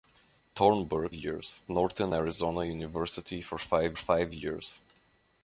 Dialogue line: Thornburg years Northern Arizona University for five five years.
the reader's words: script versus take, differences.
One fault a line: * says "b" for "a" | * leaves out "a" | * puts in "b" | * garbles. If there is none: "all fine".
all fine